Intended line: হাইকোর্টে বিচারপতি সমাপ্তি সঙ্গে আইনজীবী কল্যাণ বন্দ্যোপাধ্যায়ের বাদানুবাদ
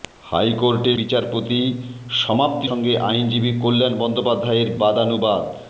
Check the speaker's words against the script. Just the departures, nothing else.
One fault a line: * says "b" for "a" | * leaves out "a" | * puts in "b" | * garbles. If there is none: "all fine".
all fine